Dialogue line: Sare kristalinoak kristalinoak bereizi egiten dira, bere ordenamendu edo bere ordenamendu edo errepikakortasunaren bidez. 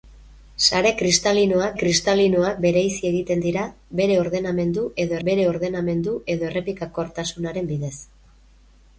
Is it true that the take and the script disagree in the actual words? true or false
false